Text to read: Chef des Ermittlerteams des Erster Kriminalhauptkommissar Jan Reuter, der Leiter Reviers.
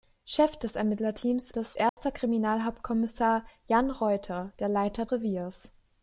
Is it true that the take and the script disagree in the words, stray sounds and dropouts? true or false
true